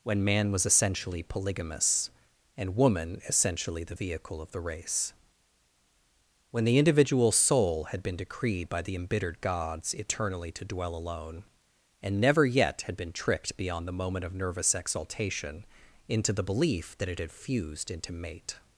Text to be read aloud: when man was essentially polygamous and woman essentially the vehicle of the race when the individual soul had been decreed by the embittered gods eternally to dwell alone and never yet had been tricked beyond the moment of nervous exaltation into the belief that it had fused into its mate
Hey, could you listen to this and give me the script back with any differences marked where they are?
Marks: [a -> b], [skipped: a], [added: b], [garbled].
when man was essentially polygamous and woman essentially the vehicle of the race when the individual soul had been decreed by the embittered gods eternally to dwell alone and never yet had been tricked beyond the moment of nervous exaltation into the belief that it had fused into [skipped: its] mate